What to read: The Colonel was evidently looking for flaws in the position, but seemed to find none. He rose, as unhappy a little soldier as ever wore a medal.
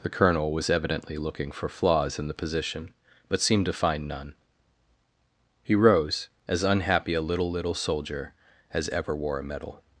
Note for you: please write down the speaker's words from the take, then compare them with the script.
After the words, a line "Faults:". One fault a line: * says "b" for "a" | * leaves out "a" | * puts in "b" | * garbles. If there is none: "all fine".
The Colonel was evidently looking for flaws in the position, but seemed to find none. He rose, as unhappy a little little soldier as ever wore a medal.
Faults:
* puts in "little"